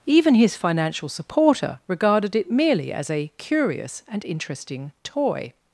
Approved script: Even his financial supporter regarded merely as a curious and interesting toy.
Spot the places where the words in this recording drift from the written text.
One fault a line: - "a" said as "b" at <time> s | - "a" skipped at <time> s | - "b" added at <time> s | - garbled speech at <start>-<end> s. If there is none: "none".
- "it" added at 2.4 s